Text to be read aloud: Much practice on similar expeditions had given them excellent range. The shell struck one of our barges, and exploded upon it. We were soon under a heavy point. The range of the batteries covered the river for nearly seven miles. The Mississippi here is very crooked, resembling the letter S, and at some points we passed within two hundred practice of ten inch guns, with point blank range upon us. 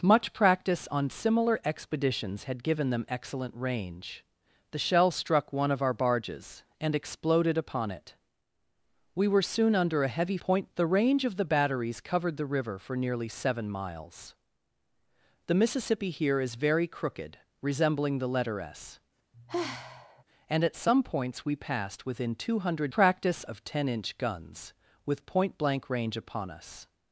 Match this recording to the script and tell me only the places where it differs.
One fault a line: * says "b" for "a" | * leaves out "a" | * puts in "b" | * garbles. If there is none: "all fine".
all fine